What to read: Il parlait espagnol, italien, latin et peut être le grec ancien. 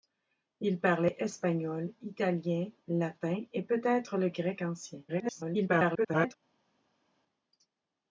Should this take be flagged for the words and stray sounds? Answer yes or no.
yes